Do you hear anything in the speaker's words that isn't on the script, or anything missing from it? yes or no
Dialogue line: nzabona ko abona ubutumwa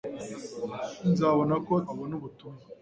no